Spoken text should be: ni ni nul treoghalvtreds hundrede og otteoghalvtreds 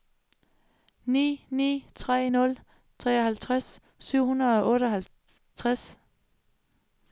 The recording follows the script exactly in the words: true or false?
false